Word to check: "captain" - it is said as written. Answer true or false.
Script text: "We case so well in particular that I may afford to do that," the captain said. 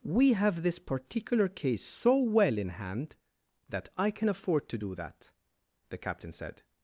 true